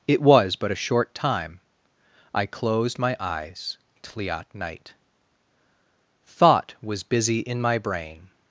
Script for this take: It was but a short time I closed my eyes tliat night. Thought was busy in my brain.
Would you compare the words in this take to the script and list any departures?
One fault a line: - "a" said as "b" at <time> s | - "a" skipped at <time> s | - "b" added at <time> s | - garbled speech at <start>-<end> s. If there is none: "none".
none